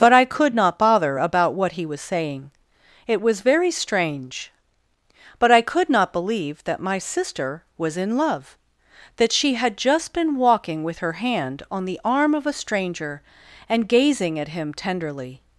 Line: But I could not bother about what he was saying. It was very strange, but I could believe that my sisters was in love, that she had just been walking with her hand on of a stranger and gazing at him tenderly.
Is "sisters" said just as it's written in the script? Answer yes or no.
no